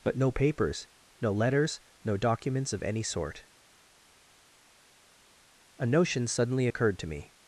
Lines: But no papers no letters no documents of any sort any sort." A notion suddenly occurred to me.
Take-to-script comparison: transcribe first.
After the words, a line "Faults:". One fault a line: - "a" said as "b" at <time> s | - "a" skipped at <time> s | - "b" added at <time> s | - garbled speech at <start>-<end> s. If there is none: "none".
But no papers no letters no documents of any sort." A notion suddenly occurred to me.
Faults:
- "any sort" skipped at 3.5 s